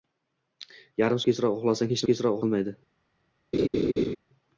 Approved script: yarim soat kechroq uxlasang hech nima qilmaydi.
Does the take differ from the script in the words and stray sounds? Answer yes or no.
yes